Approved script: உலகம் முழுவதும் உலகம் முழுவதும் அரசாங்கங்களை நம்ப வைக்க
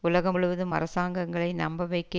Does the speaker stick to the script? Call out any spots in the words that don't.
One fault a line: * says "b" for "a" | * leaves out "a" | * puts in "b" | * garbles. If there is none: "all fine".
* leaves out "உலகம் முழுவதும்"